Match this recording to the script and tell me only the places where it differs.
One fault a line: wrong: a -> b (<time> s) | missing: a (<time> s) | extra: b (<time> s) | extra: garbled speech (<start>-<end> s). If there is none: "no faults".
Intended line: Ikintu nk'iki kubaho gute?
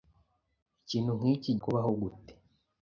no faults